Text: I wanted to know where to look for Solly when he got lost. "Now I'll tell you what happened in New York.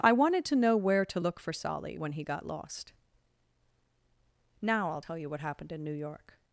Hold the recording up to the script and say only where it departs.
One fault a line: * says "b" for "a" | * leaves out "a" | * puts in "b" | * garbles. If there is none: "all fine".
all fine